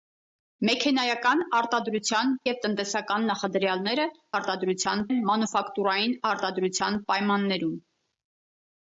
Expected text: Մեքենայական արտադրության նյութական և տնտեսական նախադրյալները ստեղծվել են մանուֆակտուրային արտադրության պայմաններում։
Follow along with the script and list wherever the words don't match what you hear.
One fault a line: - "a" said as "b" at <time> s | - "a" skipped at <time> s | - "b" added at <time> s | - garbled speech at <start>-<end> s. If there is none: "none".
- "նյութական" skipped at 2.3 s
- "ստեղծվել" said as "արտադրության" at 4.4 s